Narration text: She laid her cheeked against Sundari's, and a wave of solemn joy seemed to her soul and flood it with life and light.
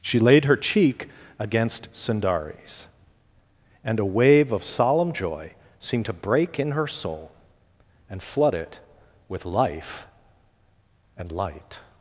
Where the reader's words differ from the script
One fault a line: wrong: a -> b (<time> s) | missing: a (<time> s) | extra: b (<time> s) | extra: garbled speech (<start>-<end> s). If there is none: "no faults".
wrong: cheeked -> cheek (0.6 s)
extra: break in (6.1 s)